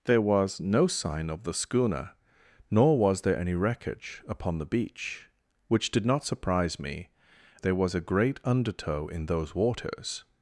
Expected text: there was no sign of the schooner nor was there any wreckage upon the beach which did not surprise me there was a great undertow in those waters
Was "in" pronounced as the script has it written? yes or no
yes